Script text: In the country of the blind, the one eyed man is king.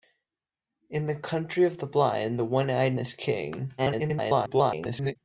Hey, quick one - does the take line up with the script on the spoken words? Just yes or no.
no